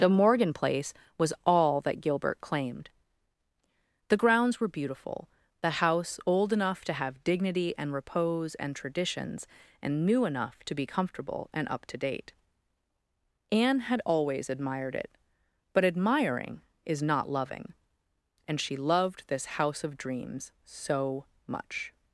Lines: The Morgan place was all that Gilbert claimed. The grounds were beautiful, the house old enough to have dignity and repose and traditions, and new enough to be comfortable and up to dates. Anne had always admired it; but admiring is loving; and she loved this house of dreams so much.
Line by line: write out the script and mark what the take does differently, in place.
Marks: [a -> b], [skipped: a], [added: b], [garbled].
The Morgan place was all that Gilbert claimed. The grounds were beautiful, the house old enough to have dignity and repose and traditions, and new enough to be comfortable and up to [dates. -> date] Anne had always admired it; but admiring is [added: not] loving; and she loved this house of dreams so much.